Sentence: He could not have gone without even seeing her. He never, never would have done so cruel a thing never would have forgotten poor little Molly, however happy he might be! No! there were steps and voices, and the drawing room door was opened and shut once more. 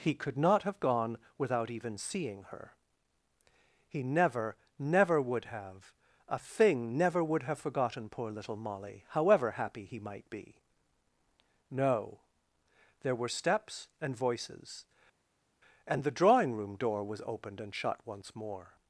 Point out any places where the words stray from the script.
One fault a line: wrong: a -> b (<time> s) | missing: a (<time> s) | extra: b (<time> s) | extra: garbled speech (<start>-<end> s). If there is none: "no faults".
missing: done so cruel (5.9 s)